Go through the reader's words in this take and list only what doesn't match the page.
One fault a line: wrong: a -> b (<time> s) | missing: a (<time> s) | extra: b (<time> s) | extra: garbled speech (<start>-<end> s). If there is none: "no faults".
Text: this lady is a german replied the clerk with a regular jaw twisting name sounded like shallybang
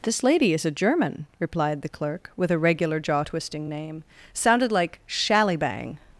no faults